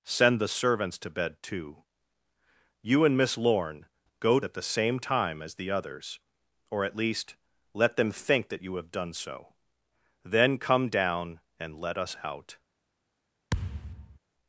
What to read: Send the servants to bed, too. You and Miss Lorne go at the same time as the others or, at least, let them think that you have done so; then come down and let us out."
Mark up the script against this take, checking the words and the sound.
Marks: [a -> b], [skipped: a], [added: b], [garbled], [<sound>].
Send the servants to bed, too. You and Miss Lorne go at the same time as the others or, at least, let them think that you have done so; then come down and let us out." [thud]